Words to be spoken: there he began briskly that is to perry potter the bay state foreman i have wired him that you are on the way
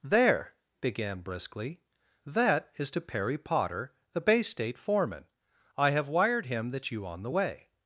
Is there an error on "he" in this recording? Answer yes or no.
yes